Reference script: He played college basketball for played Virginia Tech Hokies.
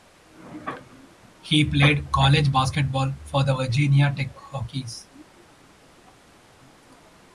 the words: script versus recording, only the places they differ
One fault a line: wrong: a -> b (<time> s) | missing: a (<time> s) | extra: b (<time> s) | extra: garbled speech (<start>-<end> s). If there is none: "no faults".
wrong: played -> the (3.4 s)